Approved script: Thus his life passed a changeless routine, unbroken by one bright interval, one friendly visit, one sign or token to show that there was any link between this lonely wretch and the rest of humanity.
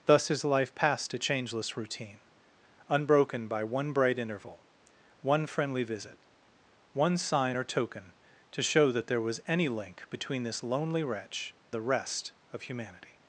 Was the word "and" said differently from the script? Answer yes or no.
yes